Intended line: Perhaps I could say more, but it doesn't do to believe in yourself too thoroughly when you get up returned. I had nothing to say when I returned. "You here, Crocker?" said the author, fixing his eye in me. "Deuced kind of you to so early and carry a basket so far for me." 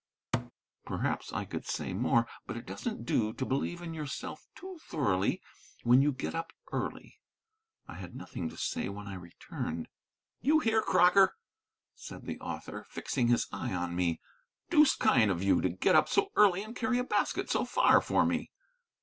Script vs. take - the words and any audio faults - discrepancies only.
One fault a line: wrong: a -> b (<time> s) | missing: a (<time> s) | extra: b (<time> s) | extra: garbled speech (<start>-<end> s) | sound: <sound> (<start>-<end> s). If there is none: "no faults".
sound: thud (0.3-0.5 s)
wrong: returned -> early (6.7 s)
wrong: in -> on (13.7 s)
extra: get up (15.7 s)